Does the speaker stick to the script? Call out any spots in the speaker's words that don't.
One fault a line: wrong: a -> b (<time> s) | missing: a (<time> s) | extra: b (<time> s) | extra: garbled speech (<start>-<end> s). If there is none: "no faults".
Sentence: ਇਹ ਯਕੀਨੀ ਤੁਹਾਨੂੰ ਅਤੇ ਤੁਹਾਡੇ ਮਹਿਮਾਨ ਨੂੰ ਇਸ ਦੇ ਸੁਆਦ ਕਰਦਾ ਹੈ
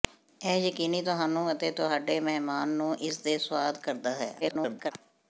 extra: garbled speech (4.4-4.9 s)